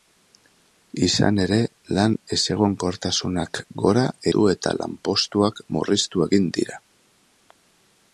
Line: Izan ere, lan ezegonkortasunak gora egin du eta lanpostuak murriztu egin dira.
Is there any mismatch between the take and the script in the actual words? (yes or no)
yes